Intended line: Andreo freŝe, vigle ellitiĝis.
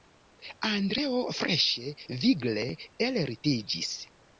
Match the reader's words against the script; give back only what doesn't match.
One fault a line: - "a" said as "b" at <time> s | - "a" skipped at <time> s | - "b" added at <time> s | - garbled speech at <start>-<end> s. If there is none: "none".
none